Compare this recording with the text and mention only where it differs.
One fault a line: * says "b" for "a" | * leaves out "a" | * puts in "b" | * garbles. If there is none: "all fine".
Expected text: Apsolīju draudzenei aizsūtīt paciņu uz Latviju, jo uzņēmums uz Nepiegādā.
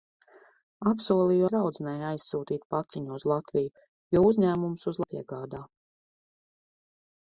all fine